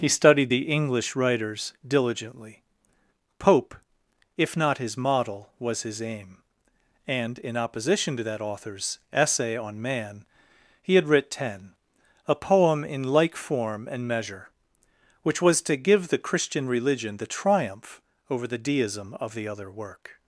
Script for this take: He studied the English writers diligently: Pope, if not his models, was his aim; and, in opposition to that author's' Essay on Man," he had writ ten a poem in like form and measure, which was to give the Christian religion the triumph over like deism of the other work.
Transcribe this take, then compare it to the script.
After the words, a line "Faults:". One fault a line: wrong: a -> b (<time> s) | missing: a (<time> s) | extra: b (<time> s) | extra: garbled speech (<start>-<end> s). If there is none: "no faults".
He studied the English writers diligently: Pope, if not his model, was his aim; and, in opposition to that author's' Essay on Man," he had writ ten a poem in like form and measure, which was to give the Christian religion the triumph over the deism of the other work.
Faults:
wrong: models -> model (5.0 s)
wrong: like -> the (18.5 s)